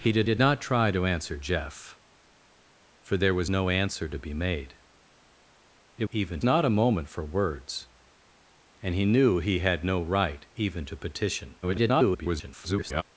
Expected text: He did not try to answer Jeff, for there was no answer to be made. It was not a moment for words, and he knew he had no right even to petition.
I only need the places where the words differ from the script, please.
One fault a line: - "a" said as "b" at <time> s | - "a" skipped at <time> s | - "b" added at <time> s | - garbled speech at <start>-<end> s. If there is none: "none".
- "did" added at 0.2 s
- "was" said as "even" at 6.1 s
- garbled speech at 11.6-13.0 s